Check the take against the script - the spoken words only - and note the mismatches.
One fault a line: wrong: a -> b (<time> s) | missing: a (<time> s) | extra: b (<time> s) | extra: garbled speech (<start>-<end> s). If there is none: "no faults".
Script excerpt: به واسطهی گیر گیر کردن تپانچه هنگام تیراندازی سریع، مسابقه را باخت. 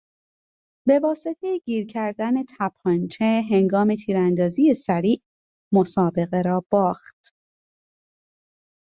missing: گیر (1.9 s)